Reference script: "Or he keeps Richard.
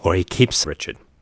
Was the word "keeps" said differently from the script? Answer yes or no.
no